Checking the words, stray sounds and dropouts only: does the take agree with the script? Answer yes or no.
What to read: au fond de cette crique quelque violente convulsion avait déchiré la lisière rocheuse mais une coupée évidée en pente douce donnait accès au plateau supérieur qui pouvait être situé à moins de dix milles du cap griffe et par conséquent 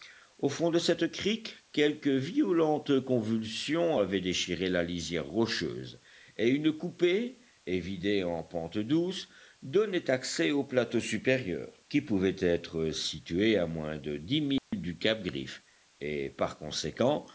no